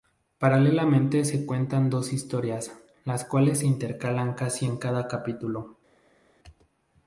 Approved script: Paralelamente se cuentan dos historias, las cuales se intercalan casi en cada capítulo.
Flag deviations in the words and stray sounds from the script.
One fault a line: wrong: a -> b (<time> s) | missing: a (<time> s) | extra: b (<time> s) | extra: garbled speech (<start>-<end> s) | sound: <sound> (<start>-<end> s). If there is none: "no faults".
no faults